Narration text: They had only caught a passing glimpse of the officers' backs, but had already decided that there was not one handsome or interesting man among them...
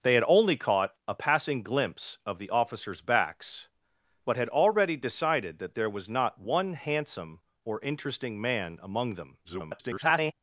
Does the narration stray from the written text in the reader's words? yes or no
yes